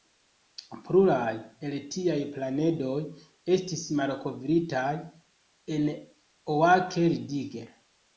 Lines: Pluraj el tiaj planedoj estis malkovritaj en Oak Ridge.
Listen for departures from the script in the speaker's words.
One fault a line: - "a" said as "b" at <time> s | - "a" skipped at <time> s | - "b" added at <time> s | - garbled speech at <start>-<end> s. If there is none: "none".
none